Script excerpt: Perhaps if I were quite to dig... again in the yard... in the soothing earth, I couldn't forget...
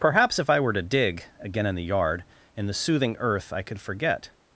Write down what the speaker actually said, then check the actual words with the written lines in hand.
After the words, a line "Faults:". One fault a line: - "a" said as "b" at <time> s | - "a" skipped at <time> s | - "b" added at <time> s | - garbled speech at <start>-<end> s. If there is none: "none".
Perhaps if I were to dig... again in the yard... in the soothing earth, I could forget...
Faults:
- "quite" skipped at 0.7 s
- "couldn't" said as "could" at 3.6 s